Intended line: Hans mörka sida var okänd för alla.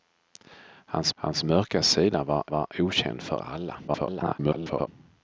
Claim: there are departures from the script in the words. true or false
true